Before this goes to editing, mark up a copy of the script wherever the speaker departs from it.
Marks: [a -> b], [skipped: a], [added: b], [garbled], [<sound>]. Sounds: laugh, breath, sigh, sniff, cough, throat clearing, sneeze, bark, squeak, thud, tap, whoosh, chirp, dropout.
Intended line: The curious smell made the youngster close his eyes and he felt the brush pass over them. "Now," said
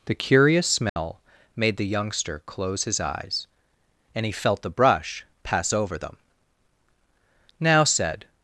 The curious smell [dropout] made the youngster close his eyes and he felt the brush pass over them. "Now," said